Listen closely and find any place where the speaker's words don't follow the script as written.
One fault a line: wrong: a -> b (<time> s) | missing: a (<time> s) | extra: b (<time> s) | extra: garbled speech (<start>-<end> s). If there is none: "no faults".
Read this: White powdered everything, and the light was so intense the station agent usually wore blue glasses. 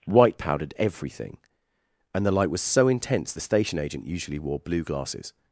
no faults